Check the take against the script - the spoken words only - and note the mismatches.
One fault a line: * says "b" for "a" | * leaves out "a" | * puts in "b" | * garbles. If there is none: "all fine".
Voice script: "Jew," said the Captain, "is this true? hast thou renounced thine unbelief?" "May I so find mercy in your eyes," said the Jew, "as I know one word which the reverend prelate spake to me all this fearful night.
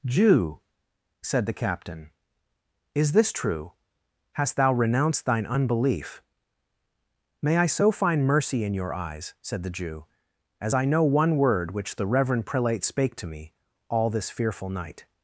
all fine